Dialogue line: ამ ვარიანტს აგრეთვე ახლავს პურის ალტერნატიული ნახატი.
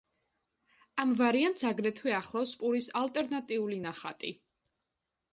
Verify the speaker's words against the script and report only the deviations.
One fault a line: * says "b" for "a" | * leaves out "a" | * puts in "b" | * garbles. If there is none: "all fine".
all fine